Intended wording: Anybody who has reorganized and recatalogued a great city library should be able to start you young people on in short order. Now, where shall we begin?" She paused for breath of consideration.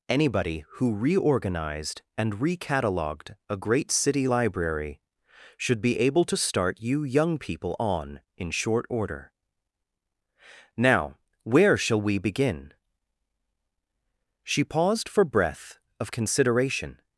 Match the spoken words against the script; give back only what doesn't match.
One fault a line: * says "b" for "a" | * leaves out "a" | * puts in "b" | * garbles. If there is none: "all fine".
* leaves out "has"